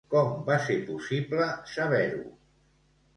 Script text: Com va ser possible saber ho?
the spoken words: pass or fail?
pass